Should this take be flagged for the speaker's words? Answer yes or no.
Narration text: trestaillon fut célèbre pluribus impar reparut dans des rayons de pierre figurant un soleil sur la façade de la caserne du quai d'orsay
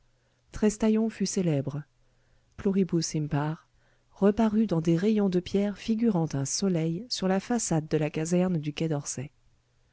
no